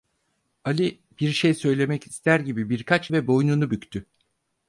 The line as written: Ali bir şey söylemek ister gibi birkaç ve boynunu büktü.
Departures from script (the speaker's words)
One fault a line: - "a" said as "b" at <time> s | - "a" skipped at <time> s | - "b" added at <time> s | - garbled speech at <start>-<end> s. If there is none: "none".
none